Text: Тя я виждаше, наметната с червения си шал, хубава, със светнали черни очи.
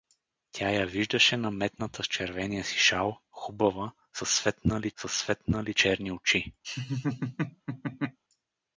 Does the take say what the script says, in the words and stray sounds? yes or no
no